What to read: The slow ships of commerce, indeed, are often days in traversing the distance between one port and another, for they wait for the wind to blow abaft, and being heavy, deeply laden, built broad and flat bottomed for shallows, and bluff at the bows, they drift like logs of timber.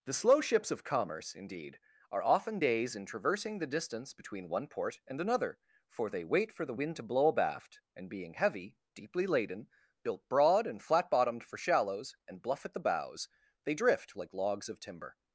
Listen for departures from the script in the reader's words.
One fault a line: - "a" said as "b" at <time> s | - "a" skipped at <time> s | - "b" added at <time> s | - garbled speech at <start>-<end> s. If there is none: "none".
none